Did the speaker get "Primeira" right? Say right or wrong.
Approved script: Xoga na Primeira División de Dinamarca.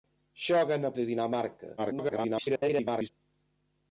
wrong